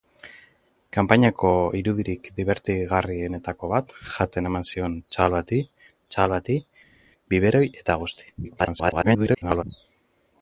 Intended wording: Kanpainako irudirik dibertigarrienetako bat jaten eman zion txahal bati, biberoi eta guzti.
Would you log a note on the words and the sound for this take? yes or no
yes